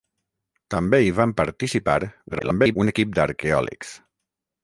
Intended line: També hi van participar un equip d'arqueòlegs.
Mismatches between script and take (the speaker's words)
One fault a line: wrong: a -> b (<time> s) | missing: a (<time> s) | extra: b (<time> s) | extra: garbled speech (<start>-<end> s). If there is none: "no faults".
extra: garbled speech (2.3-2.8 s)